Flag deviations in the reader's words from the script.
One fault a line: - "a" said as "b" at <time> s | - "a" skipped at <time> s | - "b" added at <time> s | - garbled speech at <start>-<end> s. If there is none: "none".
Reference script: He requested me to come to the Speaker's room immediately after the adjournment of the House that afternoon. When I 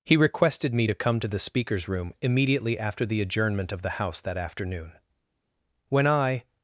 none